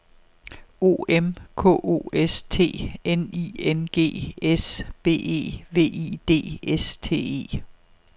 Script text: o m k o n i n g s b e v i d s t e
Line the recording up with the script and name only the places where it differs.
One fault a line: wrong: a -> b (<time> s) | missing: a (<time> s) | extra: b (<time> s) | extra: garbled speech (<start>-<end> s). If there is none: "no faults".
extra: s t (2.1 s)